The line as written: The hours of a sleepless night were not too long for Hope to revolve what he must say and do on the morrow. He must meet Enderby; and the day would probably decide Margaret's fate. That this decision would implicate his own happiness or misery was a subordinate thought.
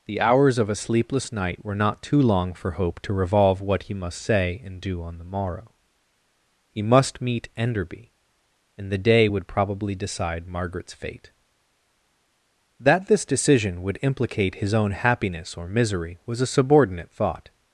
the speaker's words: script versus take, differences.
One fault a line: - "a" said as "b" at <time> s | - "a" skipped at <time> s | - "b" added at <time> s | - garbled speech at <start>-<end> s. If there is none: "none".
none